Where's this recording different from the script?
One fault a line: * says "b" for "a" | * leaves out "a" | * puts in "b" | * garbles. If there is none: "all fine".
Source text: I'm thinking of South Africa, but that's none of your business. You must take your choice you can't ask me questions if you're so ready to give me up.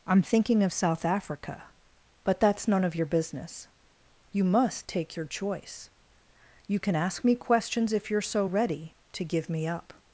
* says "can" for "can't"